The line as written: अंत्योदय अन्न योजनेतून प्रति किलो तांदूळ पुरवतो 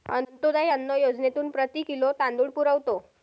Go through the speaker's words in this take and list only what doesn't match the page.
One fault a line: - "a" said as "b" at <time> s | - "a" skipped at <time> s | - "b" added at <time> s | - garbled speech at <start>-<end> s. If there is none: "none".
none